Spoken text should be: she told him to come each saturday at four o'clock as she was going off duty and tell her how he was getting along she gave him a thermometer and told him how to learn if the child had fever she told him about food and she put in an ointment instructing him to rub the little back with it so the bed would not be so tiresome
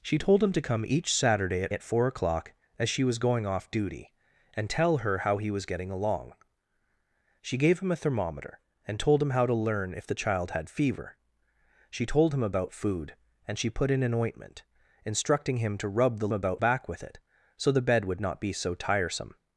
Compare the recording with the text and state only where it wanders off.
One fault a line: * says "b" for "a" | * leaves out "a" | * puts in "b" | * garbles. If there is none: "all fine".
* puts in "at"
* says "about" for "little"